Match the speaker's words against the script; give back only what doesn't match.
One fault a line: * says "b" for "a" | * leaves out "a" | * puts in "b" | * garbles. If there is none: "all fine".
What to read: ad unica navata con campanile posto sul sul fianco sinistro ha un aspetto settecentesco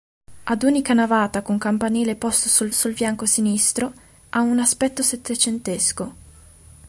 all fine